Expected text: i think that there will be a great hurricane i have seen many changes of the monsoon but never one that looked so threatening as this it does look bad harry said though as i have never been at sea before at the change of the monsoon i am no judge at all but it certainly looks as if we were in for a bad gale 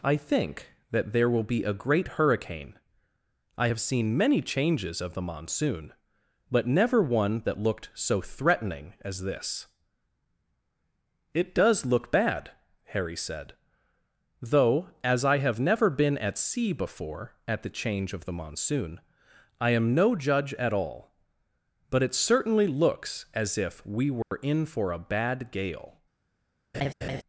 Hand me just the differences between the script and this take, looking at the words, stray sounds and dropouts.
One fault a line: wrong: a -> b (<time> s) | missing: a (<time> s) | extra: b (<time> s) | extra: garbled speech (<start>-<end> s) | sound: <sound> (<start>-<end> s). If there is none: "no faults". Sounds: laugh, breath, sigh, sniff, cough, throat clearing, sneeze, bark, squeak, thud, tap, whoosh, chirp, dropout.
sound: dropout (24.2-24.3 s)
sound: laugh (26.7-27.2 s)